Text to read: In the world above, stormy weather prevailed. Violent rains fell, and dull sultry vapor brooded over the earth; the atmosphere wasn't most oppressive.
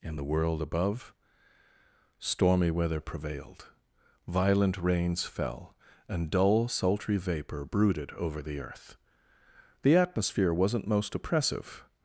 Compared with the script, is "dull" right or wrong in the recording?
right